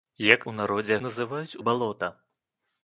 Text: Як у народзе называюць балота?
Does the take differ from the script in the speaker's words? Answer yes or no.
no